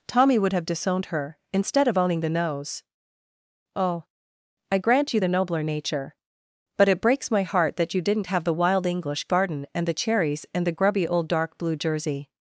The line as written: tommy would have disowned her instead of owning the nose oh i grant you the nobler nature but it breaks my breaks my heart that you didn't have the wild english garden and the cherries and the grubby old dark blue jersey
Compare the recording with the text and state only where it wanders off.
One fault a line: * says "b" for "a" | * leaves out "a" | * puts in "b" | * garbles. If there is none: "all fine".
* leaves out "breaks my"